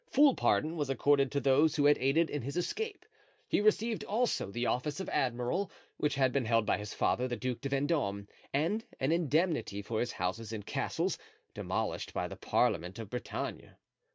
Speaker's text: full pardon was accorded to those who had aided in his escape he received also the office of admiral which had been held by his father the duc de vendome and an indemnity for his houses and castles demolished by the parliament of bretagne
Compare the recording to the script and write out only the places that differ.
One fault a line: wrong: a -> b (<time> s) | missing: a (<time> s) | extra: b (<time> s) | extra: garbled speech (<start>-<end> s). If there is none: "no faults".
no faults